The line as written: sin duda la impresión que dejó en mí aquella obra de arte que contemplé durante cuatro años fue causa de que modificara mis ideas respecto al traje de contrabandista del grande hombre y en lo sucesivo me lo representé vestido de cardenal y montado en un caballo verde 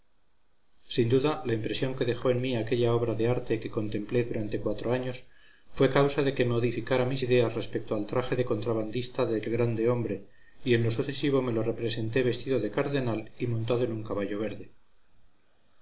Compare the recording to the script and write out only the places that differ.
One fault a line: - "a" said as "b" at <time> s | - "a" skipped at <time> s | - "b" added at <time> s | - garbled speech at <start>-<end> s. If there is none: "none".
none